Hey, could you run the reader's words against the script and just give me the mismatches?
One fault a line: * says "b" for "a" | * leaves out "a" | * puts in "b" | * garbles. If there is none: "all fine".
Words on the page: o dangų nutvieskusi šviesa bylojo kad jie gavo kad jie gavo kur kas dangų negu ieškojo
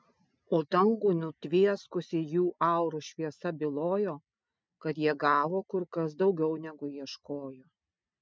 * puts in "jų aurų"
* leaves out "kad jie gavo"
* says "daugiau" for "dangų"